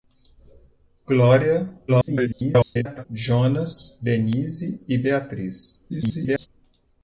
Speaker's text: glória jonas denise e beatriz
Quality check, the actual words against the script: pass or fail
fail